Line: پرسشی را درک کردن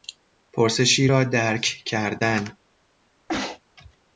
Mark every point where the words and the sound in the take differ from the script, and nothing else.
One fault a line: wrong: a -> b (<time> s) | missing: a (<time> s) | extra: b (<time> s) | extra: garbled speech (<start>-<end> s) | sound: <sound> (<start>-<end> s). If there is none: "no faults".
sound: sneeze (3.3-3.6 s)